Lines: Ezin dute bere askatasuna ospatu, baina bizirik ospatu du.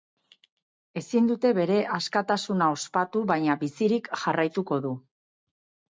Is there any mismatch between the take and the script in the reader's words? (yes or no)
yes